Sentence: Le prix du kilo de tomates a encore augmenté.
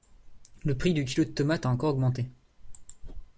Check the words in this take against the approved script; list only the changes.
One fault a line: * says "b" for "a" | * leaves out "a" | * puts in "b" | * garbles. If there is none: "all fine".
all fine